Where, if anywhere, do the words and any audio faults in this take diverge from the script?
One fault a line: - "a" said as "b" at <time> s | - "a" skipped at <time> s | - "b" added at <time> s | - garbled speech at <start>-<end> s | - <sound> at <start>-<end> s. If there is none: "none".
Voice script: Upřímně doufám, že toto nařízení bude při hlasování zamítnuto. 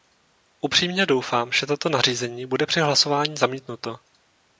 none